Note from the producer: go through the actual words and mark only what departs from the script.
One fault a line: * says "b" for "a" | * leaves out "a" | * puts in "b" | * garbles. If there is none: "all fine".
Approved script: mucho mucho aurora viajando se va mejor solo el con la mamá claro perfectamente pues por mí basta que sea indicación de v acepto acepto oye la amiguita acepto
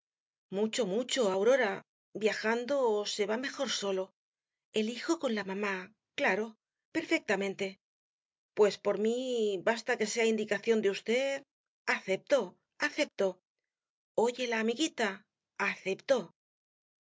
* puts in "hijo"